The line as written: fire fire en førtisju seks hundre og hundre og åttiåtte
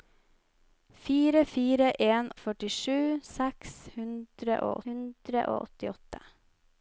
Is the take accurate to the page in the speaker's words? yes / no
yes